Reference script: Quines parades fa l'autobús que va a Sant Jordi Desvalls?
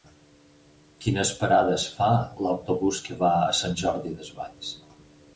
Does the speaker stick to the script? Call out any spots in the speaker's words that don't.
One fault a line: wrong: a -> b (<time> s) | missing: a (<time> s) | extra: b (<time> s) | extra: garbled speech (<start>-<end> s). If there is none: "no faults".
no faults